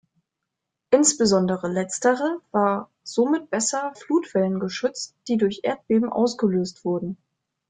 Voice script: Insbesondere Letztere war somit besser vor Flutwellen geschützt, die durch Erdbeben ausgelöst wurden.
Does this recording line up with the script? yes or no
no